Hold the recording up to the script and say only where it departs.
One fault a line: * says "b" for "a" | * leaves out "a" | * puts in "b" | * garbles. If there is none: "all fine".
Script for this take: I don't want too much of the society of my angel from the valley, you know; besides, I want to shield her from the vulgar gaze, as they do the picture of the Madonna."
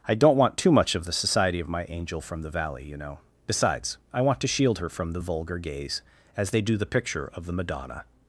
all fine